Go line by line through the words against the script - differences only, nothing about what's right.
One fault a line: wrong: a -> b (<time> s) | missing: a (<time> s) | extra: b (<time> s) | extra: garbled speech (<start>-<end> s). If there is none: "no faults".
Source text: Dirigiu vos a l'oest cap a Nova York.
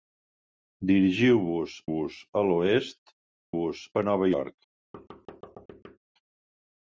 extra: vos (1.9 s)
wrong: cap -> vos (3.6 s)